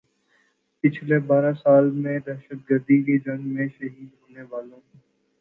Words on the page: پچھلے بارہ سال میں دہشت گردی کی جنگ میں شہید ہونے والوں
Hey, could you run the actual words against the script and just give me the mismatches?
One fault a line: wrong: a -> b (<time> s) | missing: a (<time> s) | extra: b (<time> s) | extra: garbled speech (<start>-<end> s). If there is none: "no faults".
no faults